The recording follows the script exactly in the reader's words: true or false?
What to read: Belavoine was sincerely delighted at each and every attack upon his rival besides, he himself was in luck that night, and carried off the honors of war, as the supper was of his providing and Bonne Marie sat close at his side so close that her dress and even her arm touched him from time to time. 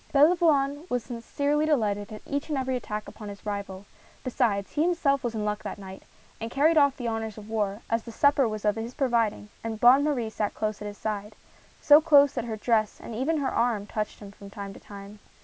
true